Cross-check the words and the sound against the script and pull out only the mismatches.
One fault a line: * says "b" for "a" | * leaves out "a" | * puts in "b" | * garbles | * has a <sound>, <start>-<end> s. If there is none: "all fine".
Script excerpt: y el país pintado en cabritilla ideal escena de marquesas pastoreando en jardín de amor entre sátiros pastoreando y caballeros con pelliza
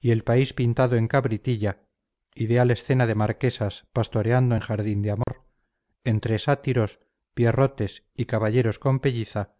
* has a dropout, 5.2-5.3 s
* says "pierrotes" for "pastoreando"